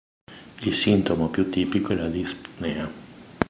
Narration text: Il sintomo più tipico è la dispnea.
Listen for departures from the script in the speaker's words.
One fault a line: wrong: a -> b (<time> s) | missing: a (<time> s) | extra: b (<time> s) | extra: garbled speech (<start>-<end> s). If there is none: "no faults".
no faults